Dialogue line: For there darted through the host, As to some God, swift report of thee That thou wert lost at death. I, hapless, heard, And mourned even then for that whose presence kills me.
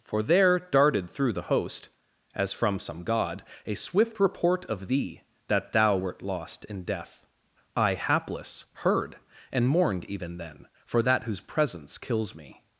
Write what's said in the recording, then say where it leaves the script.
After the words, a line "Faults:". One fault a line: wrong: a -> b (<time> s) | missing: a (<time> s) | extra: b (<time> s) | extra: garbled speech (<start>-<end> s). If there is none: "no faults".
For there darted through the host, As from some God, a swift report of thee That thou wert lost in death. I, hapless, heard, And mourned even then for that whose presence kills me.
Faults:
wrong: to -> from (2.5 s)
extra: a (3.6 s)
wrong: at -> in (6.6 s)